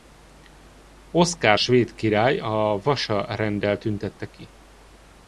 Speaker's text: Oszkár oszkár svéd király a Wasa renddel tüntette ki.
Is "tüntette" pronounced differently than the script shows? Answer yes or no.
no